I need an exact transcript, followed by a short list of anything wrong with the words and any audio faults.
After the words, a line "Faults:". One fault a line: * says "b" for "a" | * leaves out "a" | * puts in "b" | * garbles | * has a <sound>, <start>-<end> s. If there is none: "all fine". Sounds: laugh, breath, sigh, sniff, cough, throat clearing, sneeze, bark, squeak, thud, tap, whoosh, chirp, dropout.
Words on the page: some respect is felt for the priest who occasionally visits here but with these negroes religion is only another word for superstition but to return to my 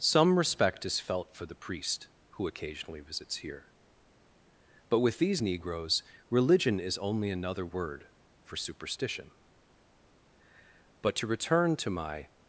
some respect is felt for the priest who occasionally visits here but with these negroes religion is only another word for superstition but to return to my
Faults:
all fine